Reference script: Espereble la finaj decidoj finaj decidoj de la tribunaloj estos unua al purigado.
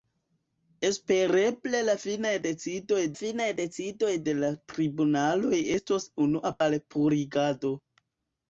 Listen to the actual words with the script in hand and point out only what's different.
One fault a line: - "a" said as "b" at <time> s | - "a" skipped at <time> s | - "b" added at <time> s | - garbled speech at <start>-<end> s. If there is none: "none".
none